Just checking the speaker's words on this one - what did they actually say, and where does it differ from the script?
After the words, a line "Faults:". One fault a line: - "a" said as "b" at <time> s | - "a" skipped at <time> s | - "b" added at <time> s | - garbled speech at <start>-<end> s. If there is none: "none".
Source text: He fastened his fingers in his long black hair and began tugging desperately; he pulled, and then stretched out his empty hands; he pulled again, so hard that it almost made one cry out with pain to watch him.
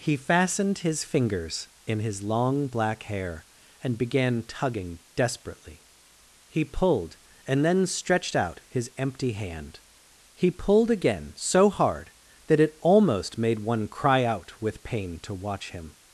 He fastened his fingers in his long black hair and began tugging desperately; he pulled, and then stretched out his empty hand; he pulled again, so hard that it almost made one cry out with pain to watch him.
Faults:
- "hands" said as "hand" at 9.3 s